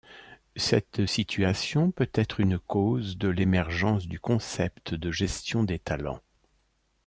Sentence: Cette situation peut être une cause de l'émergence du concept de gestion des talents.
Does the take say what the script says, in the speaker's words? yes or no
yes